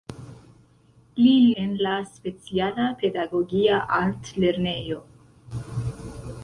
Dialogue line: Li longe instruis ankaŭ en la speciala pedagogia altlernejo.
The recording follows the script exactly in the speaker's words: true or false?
false